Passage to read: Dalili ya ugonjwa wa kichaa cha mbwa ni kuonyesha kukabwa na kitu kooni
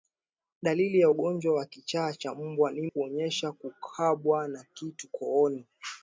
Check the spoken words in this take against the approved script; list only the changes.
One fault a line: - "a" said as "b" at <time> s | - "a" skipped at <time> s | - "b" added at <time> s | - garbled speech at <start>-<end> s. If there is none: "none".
none